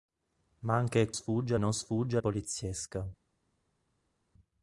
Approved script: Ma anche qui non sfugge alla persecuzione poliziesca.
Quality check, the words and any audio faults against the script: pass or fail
fail